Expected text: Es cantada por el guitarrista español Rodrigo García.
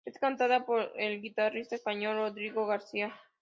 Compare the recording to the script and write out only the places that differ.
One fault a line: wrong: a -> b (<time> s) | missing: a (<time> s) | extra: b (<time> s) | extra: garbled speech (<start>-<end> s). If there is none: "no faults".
no faults